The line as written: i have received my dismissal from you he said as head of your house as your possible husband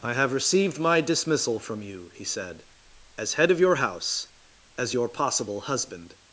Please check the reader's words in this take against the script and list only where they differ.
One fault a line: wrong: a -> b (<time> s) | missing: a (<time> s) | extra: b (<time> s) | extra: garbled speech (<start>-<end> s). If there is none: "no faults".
no faults